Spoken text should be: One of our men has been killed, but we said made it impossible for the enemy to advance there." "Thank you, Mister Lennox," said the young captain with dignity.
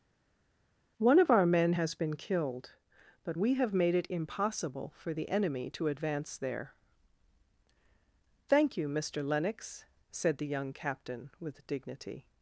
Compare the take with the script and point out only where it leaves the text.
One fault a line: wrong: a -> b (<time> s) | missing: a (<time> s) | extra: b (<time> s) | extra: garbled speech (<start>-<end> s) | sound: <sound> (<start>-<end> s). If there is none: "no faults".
wrong: said -> have (3.5 s)